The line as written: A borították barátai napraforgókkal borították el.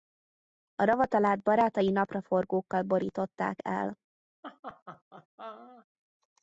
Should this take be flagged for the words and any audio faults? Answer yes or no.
yes